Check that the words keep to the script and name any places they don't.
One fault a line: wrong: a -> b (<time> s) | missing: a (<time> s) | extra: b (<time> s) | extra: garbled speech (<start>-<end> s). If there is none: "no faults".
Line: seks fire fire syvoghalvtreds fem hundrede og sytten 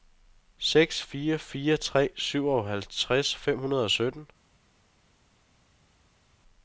extra: tre (1.8 s)